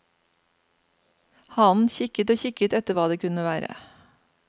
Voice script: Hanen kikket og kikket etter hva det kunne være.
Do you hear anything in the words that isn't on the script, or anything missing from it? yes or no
no